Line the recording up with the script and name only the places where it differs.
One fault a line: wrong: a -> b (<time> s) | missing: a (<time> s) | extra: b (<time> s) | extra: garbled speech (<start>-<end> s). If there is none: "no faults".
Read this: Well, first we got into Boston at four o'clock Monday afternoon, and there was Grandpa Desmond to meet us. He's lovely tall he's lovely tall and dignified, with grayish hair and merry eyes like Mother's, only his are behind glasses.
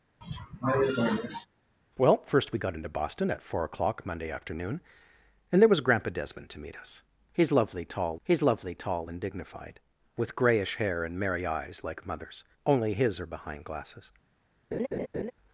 no faults